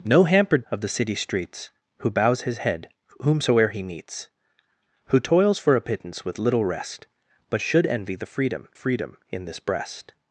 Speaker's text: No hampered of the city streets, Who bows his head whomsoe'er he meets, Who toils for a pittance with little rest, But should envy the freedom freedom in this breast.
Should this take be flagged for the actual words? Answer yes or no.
no